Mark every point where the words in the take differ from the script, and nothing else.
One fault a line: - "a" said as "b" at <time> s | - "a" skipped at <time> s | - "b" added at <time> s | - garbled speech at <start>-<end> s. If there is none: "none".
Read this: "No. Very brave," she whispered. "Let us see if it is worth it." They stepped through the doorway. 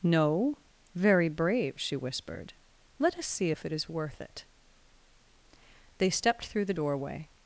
none